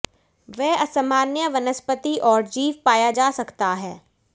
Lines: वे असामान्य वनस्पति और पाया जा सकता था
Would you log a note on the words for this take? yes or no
yes